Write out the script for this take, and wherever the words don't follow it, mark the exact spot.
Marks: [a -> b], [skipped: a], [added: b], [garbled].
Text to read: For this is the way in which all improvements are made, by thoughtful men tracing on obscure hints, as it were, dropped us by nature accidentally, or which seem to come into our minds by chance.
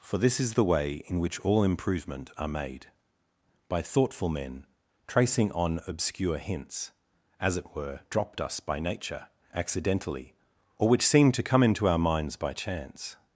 For this is the way in which all [improvements -> improvement] are made, by thoughtful men tracing on obscure hints, as it were, dropped us by nature accidentally, or which seem to come into our minds by chance.